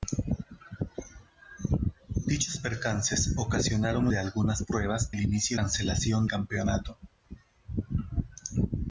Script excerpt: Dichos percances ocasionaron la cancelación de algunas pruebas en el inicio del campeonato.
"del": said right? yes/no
no